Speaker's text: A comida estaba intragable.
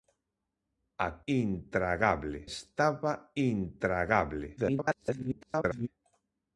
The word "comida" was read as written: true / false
false